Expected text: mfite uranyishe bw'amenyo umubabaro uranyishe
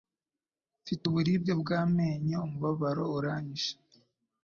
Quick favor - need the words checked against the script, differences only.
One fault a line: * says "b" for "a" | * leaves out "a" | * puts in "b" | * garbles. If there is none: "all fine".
* says "uburibwe" for "uranyishe"